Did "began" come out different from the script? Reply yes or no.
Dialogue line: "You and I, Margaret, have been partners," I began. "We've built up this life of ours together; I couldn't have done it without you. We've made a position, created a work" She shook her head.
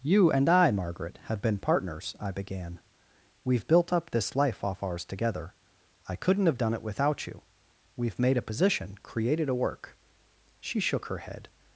no